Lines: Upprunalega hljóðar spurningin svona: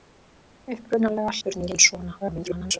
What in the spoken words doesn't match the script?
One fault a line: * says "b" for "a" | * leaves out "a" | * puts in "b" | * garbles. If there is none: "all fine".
* leaves out "hljóðar"
* garbles